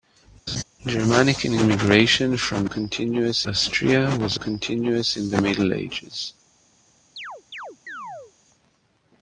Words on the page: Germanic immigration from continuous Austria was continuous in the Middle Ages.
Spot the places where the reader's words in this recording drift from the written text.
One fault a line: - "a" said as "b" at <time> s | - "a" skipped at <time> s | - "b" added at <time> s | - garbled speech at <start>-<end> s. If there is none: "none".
none